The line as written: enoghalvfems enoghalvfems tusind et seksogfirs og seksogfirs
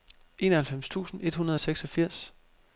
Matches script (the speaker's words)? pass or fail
fail